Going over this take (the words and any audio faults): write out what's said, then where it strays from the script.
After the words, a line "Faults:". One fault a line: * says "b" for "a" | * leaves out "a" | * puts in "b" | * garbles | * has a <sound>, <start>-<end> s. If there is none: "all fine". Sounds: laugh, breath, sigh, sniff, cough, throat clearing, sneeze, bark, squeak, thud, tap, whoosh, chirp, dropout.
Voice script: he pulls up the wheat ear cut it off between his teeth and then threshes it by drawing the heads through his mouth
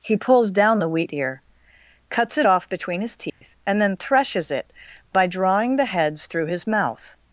he pulls down the wheat ear cuts it off between his teeth and then threshes it by drawing the heads through his mouth
Faults:
* says "down" for "up"
* says "cuts" for "cut"
* has a dropout, 3.3-3.4 s